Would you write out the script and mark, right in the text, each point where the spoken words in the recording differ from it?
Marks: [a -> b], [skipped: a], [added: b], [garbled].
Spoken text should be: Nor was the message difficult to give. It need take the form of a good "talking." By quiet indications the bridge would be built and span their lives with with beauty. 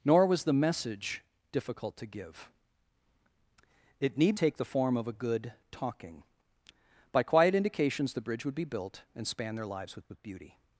Nor was the message difficult to give. It need take the form of a good "talking." By quiet indications the bridge would be built and span their lives with with beauty.